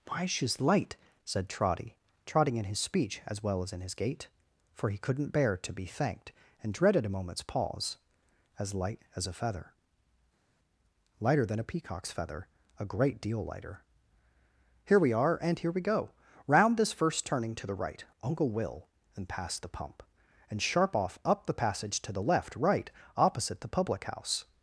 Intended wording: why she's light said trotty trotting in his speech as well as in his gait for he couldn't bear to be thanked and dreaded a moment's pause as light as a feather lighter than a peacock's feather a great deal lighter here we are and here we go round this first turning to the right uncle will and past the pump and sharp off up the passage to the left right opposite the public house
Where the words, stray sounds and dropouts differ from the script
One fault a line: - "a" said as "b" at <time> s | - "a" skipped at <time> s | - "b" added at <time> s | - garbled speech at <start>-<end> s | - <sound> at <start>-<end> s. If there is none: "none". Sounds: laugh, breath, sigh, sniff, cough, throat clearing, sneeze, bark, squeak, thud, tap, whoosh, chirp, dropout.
none